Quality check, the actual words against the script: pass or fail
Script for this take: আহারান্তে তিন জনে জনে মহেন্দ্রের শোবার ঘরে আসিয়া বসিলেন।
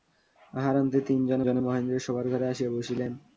pass